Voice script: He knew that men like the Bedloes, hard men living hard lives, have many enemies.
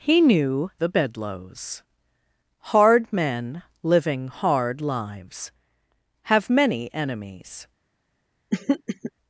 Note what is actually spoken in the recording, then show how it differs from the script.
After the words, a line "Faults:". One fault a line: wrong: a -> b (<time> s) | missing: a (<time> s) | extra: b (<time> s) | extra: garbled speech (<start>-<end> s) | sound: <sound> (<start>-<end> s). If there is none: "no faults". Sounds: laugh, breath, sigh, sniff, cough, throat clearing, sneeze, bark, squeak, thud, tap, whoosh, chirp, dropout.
He knew the Bedloes, hard men living hard lives, have many enemies.
Faults:
missing: that men like (0.7 s)
sound: throat clearing (8.5-9.1 s)